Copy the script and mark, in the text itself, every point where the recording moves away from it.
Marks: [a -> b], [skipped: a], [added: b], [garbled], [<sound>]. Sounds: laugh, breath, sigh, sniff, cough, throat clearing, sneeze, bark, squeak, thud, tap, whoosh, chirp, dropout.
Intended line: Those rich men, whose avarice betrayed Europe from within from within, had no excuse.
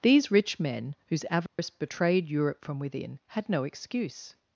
[Those -> These] rich men, whose avarice [dropout] betrayed Europe from within [skipped: from within,] had no excuse.